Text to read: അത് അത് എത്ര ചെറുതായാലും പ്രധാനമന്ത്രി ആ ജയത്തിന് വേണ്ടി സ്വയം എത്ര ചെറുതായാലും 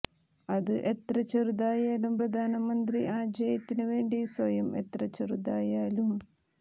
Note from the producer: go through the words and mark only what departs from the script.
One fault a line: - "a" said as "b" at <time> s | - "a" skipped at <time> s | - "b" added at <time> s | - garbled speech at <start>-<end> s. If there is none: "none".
- "അത്" skipped at 0.7 s